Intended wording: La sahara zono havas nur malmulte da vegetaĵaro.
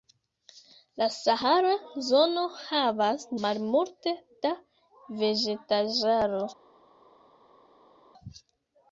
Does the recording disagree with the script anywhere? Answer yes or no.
yes